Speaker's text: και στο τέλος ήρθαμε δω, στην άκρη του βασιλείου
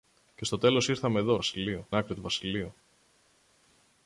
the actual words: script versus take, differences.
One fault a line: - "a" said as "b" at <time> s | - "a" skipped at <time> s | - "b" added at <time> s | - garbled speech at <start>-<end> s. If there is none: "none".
- "στην" said as "βασιλείου" at 1.3 s